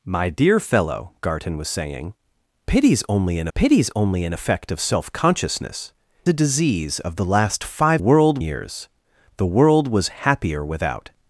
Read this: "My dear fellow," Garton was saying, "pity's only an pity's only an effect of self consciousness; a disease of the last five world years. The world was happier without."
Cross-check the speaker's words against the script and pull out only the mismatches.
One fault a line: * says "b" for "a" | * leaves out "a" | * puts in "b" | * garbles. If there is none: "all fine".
all fine